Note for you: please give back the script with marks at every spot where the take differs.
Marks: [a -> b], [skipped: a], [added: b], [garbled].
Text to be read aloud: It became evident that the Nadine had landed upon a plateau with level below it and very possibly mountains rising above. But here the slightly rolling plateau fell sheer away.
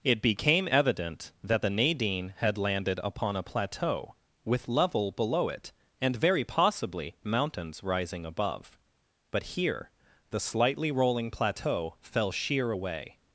It became evident that the Nadine had landed upon a plateau with level below it and very possibly mountains rising above. But here the slightly rolling plateau fell sheer away.